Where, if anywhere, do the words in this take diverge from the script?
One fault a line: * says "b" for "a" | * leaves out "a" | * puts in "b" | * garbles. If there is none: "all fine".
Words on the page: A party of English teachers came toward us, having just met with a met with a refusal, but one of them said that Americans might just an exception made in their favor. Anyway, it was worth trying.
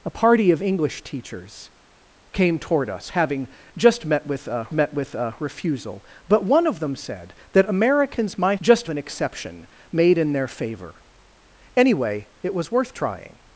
all fine